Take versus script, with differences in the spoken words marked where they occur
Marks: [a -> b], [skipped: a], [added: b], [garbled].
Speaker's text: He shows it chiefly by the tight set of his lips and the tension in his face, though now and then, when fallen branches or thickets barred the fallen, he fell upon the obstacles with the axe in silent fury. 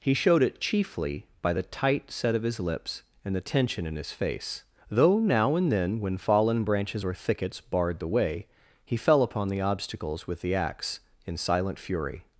He [shows -> showed] it chiefly by the tight set of his lips and the tension in his face, though now and then, when fallen branches or thickets barred the [fallen, -> way] he fell upon the obstacles with the axe in silent fury.